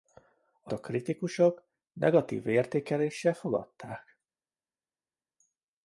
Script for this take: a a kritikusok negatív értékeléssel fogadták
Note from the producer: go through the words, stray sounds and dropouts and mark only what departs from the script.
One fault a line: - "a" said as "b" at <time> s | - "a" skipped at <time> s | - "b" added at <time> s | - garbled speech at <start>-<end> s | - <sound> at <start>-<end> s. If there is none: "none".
none